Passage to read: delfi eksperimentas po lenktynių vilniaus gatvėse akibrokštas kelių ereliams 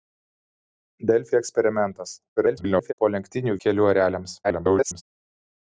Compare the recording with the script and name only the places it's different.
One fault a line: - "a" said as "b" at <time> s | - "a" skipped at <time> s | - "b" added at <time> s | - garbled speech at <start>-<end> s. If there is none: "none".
- garbled speech at 2.4-2.9 s
- "vilniaus gatvėse akibrokštas" skipped at 3.6 s
- garbled speech at 4.4-5.0 s